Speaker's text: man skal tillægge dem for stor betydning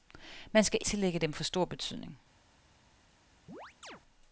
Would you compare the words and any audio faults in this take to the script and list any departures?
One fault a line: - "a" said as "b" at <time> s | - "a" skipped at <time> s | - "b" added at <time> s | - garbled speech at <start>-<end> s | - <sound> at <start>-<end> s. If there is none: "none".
- chirp at 3.5-4.0 s